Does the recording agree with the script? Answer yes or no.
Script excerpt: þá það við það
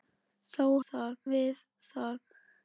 yes